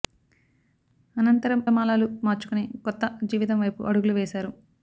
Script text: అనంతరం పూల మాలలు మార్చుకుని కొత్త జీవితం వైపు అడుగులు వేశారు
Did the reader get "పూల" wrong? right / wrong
wrong